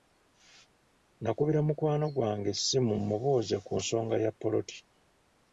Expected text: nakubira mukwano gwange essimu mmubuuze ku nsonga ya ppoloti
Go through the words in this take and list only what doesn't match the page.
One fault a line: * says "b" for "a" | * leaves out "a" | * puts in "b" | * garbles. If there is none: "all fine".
all fine